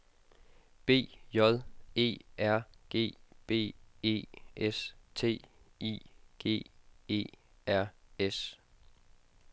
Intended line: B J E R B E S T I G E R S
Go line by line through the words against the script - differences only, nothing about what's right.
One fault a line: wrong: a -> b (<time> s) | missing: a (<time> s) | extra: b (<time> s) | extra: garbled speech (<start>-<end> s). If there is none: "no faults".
extra: G (2.9 s)